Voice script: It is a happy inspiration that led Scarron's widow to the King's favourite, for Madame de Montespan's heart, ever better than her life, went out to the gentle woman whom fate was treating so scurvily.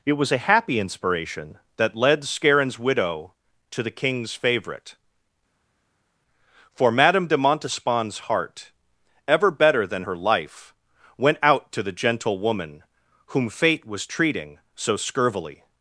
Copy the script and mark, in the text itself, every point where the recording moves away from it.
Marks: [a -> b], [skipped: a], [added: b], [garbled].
It [is -> was] a happy inspiration that led Scarron's widow to the King's favourite, for Madame de Montespan's heart, ever better than her life, went out to the gentle woman whom fate was treating so scurvily.